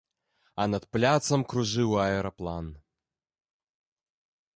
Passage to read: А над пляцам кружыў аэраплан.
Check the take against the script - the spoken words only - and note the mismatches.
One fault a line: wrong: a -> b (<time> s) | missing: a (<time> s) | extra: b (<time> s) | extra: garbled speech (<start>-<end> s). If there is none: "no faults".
no faults